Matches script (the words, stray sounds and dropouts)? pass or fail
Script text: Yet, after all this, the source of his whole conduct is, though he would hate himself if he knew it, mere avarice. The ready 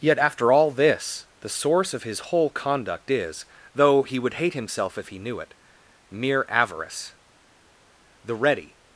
pass